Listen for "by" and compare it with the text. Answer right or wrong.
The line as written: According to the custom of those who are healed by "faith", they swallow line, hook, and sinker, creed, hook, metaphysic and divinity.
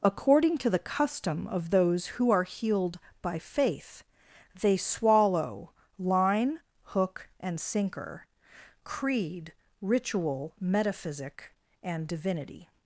right